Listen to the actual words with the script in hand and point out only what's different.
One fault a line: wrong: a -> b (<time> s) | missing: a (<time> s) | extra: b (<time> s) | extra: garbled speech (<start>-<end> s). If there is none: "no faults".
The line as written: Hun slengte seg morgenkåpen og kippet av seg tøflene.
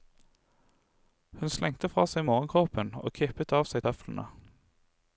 extra: fra (1.9 s)